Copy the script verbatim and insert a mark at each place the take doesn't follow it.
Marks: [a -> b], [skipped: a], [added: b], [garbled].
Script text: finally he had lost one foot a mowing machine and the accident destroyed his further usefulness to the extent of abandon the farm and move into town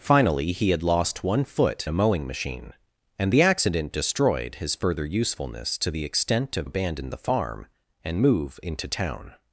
finally he had lost one foot a mowing machine and the accident destroyed his further usefulness to the extent of abandon the farm and move into town